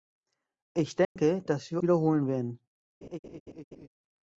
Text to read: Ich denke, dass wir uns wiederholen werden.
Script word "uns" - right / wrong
wrong